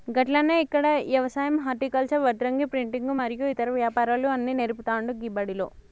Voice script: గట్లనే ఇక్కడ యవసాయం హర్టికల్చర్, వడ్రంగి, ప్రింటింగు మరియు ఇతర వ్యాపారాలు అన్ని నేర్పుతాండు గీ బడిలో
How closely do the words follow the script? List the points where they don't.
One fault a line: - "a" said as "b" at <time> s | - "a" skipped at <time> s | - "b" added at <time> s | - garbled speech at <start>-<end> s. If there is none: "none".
none